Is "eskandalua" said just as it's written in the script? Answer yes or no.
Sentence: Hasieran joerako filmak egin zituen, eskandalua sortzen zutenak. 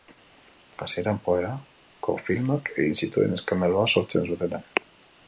yes